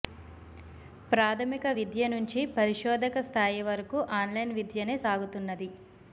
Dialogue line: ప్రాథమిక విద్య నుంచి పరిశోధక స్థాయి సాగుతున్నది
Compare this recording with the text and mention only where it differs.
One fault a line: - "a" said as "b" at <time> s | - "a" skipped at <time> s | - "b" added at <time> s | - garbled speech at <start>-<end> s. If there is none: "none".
- "వరకు ఆన్లైన్ విద్యనే" added at 3.7 s